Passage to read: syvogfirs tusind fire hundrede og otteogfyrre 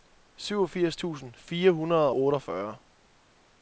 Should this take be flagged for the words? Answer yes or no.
yes